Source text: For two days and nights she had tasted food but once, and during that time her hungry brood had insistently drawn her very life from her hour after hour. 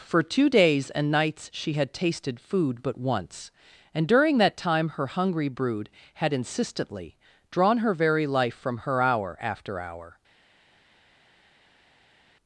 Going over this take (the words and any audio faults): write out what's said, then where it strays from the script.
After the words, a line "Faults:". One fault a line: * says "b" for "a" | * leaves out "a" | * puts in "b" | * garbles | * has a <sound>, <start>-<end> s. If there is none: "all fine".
For two days and nights she had tasted food but once, and during that time her hungry brood had insistently drawn her very life from her hour after hour.
Faults:
all fine